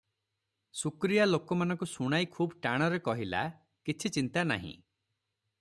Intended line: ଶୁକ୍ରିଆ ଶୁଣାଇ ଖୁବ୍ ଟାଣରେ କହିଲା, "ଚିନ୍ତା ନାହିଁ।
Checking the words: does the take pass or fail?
fail